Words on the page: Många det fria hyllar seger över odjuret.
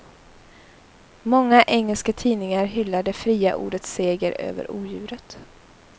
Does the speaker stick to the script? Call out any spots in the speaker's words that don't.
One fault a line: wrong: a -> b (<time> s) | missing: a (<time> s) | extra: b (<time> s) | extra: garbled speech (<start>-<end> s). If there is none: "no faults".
extra: engelska tidningar hyllar (1.6 s)
wrong: hyllar -> ordets (3.5 s)